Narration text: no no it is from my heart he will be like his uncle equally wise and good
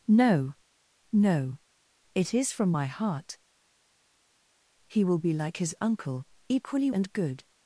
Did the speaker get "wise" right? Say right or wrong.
wrong